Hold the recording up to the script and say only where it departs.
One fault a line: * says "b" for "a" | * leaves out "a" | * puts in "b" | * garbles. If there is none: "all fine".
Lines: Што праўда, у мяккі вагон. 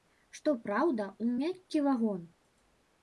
all fine